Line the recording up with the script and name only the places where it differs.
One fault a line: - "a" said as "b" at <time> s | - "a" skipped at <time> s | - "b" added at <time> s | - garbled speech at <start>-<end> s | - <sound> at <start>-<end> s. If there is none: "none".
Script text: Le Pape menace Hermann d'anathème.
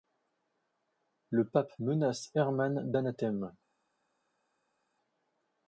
none